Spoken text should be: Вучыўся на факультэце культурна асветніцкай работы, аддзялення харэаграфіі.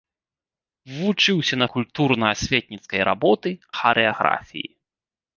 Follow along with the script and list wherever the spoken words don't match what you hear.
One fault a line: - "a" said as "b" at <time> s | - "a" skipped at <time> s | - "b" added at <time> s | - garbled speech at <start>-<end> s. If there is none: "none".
- "факультэце" skipped at 1.7 s
- "аддзялення" skipped at 3.5 s